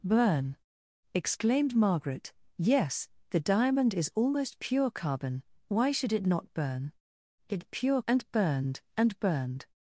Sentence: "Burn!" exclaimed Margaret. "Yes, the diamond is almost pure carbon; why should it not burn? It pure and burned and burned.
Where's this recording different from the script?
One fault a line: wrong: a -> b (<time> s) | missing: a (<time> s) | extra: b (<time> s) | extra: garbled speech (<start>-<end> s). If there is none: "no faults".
no faults